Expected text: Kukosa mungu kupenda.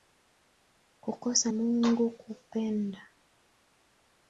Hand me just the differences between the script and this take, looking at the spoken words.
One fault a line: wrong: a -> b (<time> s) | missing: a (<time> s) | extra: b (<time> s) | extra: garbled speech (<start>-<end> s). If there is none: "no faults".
no faults